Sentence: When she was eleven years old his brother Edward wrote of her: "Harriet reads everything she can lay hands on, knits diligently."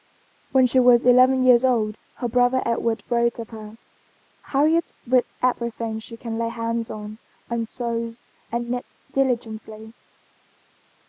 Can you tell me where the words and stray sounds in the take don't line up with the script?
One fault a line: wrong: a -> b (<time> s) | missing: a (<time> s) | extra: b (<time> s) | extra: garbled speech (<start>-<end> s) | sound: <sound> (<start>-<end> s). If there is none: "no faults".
wrong: his -> her (2.1 s)
extra: and sews and (7.5 s)